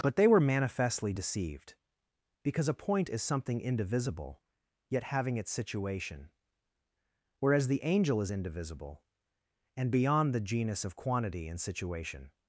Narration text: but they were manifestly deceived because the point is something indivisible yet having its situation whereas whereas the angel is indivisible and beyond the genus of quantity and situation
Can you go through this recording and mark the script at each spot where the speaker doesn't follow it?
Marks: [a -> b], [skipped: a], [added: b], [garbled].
but they were manifestly deceived because [the -> a] point is something indivisible yet having its situation whereas [skipped: whereas] the angel is indivisible and beyond the genus of quantity and situation